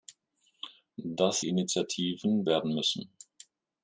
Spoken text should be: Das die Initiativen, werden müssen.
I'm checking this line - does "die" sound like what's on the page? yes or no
yes